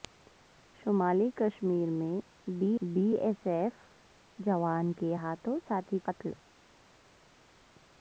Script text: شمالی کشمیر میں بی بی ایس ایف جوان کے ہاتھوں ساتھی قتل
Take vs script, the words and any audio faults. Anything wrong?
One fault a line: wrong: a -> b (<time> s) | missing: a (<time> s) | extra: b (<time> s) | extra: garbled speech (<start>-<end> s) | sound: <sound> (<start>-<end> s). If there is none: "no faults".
no faults